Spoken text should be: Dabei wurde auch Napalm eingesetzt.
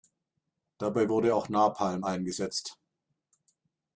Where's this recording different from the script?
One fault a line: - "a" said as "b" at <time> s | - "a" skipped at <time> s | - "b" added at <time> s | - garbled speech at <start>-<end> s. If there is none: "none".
none